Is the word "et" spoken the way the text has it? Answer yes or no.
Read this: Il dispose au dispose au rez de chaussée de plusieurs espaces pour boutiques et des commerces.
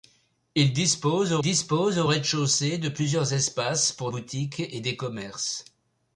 yes